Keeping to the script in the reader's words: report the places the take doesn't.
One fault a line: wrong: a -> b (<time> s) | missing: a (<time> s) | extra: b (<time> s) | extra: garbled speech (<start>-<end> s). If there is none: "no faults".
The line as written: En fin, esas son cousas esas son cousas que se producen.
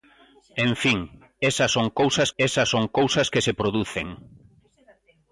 no faults